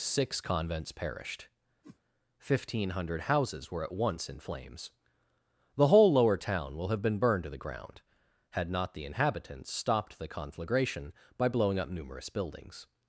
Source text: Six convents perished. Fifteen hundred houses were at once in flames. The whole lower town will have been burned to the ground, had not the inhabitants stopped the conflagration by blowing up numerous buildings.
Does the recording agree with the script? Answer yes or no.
yes